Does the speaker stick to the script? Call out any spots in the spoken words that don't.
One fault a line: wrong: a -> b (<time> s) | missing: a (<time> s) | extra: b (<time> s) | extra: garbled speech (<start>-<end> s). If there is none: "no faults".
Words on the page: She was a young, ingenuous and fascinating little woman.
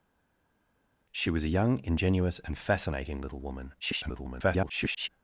extra: garbled speech (3.8-5.1 s)